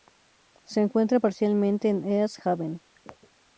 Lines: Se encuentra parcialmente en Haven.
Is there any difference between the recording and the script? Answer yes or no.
yes